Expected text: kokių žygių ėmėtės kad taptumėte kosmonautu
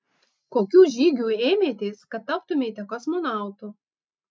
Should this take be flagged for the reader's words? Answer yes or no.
no